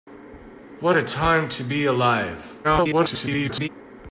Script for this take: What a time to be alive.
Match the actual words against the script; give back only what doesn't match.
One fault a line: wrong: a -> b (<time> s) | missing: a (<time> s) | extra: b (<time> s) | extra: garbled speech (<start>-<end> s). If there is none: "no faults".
extra: garbled speech (2.6-3.7 s)